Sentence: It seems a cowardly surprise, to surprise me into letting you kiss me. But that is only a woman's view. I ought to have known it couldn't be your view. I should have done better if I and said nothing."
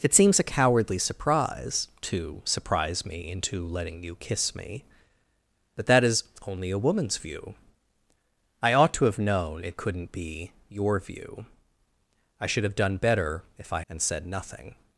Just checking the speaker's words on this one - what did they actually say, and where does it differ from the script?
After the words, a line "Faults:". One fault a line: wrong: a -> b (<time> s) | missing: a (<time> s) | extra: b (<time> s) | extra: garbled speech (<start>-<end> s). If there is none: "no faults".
It seems a cowardly surprise, to surprise me into letting you kiss me. But that is only a woman's view. I ought to have known it couldn't be your view. I should have done better if I and said nothing."
Faults:
no faults